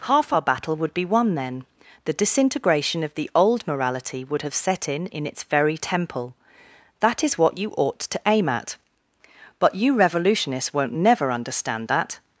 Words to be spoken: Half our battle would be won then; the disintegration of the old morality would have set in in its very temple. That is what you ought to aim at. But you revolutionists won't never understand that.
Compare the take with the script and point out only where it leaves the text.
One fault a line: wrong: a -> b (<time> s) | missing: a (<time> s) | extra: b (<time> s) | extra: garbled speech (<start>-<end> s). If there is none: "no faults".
no faults